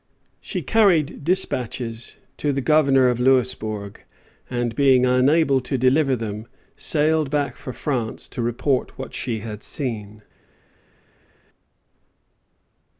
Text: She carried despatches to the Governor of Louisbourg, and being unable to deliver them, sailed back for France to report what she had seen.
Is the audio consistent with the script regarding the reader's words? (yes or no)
yes